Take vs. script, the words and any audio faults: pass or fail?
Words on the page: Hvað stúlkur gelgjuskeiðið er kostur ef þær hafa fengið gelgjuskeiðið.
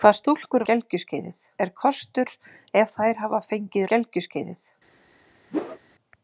fail